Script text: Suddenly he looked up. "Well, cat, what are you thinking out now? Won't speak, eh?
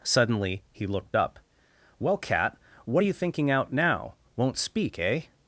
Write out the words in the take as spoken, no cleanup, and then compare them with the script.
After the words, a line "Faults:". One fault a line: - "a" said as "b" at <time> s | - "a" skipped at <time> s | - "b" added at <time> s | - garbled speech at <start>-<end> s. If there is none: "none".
Suddenly he looked up. "Well, cat, what are you thinking out now? Won't speak, eh?
Faults:
none